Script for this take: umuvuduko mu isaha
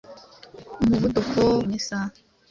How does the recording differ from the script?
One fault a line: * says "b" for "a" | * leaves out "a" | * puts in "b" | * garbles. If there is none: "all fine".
all fine